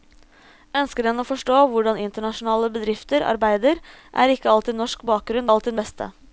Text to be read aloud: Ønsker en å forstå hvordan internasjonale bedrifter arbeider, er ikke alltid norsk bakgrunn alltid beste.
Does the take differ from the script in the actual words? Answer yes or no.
no